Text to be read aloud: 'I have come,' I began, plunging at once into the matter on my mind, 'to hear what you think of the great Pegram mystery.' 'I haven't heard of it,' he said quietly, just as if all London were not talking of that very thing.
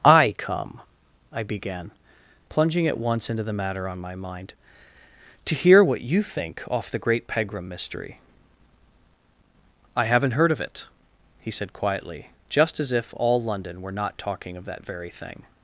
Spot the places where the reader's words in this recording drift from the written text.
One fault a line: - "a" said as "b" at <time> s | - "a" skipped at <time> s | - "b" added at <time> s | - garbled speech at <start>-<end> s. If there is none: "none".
- "have" skipped at 0.3 s
- "of" said as "off" at 6.7 s